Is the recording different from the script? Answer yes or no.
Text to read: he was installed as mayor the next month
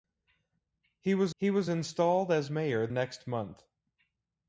yes